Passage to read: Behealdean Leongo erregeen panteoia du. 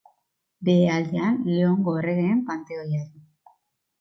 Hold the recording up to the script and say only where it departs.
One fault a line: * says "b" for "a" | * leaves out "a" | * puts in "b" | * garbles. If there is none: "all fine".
all fine